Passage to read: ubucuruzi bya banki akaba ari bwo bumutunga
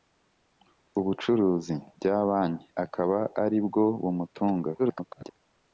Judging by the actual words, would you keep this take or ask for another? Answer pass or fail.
fail